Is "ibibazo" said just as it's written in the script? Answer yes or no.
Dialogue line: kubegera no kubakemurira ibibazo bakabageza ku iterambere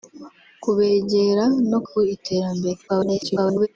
no